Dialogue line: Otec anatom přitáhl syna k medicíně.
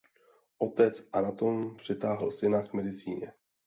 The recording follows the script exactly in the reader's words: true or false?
true